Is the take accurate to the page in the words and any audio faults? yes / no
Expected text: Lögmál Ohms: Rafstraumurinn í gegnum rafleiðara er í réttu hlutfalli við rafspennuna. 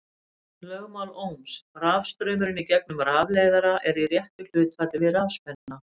no